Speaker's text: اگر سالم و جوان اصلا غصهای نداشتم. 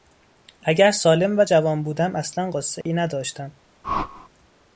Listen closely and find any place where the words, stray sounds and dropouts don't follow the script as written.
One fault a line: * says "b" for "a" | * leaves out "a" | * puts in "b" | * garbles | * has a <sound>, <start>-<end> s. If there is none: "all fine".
* puts in "بودم"
* has a dropout, 2.8-2.9 s
* has a whoosh, 3.8-4.3 s